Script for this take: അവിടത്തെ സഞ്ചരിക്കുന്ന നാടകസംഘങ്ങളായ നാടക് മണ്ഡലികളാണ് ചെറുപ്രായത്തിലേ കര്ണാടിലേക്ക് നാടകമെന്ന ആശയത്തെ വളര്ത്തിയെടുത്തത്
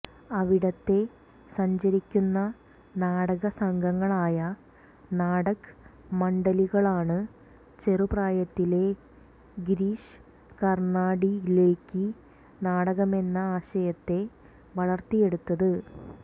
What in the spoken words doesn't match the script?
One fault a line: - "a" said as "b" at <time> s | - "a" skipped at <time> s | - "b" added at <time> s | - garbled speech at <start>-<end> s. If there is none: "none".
- "ഗിരീഷ്" added at 9.7 s